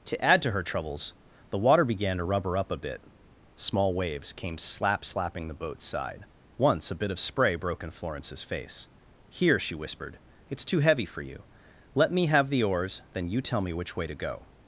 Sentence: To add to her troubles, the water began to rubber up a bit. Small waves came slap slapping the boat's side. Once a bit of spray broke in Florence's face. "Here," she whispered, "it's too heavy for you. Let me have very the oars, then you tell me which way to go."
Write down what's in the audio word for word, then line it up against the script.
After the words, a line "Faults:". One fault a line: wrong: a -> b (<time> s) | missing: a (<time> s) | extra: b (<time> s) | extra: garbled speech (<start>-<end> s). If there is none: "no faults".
To add to her troubles, the water began to rubber up a bit. Small waves came slap slapping the boat's side. Once a bit of spray broke in Florence's face. "Here," she whispered, "it's too heavy for you. Let me have the oars, then you tell me which way to go."
Faults:
missing: very (12.5 s)